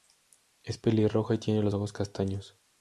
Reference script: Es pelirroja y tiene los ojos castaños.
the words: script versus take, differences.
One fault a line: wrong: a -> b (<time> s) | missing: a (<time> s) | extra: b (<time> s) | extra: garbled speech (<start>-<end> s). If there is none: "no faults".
no faults